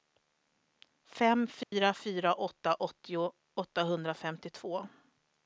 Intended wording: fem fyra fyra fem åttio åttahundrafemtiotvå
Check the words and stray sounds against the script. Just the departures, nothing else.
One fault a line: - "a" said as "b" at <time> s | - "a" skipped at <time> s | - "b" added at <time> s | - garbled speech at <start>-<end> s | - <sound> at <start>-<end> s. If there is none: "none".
- dropout at 1.6-1.7 s
- "fem" said as "åtta" at 2.3 s